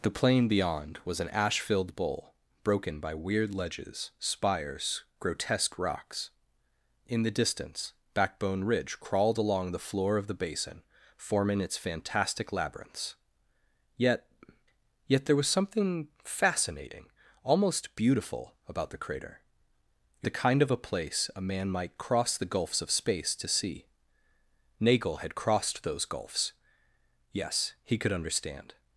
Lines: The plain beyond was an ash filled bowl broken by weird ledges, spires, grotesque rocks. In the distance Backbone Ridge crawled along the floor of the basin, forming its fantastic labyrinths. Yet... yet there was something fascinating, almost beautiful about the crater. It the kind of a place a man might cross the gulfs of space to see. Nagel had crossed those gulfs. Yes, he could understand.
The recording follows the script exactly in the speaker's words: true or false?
true